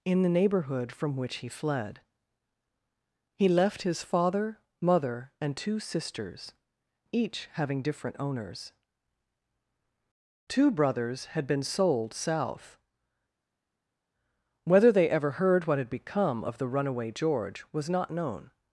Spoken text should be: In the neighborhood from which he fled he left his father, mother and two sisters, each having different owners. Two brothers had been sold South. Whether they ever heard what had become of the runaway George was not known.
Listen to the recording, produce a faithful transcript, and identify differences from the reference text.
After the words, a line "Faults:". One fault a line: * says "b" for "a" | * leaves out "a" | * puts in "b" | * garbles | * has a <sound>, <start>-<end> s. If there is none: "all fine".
In the neighborhood from which he fled he left his father, mother and two sisters, each having different owners. Two brothers had been sold South. Whether they ever heard what had become of the runaway George was not known.
Faults:
all fine